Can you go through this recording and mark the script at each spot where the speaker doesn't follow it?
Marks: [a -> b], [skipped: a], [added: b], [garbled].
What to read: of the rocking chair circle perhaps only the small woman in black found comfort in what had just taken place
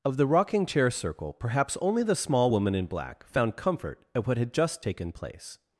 of the rocking chair circle perhaps only the small woman in black found comfort [in -> at] what had just taken place